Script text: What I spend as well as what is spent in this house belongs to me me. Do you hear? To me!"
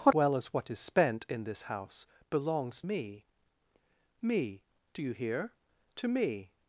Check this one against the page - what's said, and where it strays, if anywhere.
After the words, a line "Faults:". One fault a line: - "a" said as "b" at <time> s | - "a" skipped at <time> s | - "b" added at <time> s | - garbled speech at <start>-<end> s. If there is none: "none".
What well as what is spent in this house belongs me me. Do you hear? To me!"
Faults:
- "I spend as" skipped at 0.1 s
- "to" skipped at 2.8 s